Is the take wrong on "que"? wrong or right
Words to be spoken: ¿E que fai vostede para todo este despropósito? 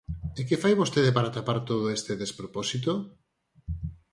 right